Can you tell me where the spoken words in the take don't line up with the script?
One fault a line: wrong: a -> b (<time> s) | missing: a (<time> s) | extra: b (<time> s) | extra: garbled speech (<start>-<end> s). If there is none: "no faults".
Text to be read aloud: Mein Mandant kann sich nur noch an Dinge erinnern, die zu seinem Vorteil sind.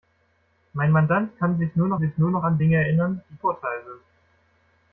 extra: sich nur noch (2.0 s)
missing: zu seinem (3.4 s)